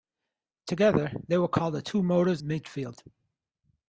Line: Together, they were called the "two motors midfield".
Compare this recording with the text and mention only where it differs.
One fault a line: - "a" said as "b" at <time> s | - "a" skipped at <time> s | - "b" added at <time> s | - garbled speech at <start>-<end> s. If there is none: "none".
none